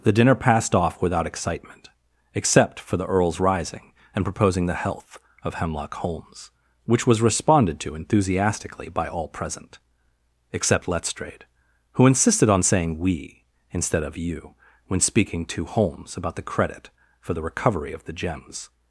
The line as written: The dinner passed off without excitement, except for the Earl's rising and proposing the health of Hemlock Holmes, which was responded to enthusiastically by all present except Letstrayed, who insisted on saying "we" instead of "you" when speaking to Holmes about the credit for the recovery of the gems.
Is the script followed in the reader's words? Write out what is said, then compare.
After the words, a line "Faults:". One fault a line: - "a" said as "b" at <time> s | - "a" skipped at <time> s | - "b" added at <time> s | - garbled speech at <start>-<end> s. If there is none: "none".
The dinner passed off without excitement, except for the Earl's rising and proposing the health of Hemlock Holmes, which was responded to enthusiastically by all present except Letstrayed, who insisted on saying "we" instead of "you" when speaking to Holmes about the credit for the recovery of the gems.
Faults:
none